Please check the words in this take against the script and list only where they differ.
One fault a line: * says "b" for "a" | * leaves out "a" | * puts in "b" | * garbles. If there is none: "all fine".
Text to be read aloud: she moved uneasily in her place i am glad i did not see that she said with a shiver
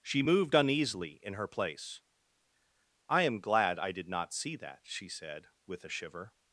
all fine